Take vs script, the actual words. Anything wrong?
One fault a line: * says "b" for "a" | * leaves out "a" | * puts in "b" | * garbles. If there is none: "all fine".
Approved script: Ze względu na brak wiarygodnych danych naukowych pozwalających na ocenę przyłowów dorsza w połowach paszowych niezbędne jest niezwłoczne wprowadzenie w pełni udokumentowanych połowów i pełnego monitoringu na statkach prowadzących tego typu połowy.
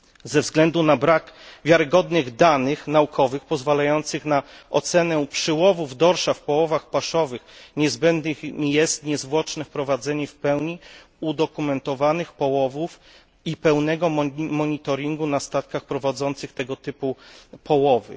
all fine